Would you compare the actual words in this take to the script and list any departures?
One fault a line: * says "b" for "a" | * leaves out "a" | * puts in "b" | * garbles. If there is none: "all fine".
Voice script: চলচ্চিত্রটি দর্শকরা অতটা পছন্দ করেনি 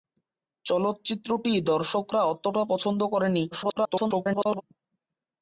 * garbles